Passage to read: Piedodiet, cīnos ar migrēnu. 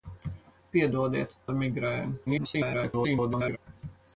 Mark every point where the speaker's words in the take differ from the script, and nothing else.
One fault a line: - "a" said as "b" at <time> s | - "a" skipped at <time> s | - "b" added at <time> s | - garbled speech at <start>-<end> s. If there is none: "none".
- "cīnos" skipped at 1.4 s
- garbled speech at 2.3-3.6 s